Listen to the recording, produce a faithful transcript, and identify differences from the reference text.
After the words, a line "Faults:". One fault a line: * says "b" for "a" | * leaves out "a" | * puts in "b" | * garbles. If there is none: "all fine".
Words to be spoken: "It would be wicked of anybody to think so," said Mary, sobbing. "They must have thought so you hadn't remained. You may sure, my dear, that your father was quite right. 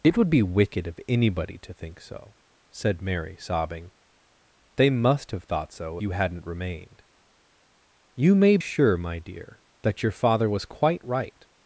"It would be wicked of anybody to think so," said Mary, sobbing. "They must have thought so you hadn't remained. You may sure, my dear, that your father was quite right.
Faults:
all fine